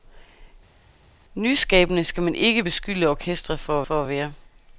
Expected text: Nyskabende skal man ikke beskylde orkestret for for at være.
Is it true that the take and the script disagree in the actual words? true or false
false